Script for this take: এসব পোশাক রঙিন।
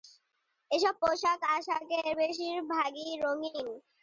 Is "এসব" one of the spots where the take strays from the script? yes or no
no